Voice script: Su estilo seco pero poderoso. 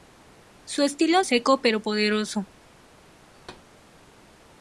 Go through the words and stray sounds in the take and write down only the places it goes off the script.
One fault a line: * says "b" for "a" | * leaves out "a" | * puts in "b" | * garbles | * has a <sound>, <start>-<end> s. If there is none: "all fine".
* has a thud, 3.3-3.7 s